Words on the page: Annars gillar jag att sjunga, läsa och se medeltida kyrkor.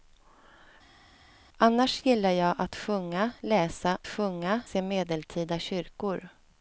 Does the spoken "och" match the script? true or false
false